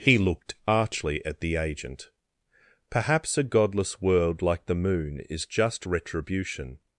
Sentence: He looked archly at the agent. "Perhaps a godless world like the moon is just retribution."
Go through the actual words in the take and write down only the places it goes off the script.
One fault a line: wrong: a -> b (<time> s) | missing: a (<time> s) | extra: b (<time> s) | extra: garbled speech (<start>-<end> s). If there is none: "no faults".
no faults